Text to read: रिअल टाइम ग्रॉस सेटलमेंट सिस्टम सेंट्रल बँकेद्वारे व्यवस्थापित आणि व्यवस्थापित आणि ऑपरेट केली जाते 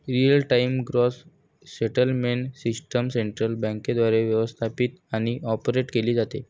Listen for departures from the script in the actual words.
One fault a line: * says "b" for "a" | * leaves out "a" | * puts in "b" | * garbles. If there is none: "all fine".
* leaves out "व्यवस्थापित आणि"